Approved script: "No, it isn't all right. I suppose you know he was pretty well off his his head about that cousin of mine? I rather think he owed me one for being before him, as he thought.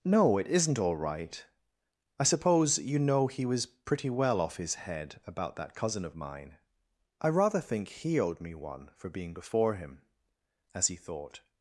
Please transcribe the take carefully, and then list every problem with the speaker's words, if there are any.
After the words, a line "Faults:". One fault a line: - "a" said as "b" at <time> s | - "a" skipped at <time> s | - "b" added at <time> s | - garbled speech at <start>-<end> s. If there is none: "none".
"No, it isn't all right. I suppose you know he was pretty well off his head about that cousin of mine? I rather think he owed me one for being before him, as he thought.
Faults:
- "his" skipped at 4.7 s